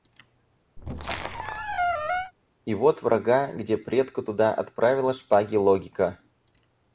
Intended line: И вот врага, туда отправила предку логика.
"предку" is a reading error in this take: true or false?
true